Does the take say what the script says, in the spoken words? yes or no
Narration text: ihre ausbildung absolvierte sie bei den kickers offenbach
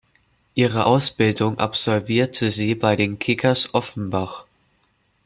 yes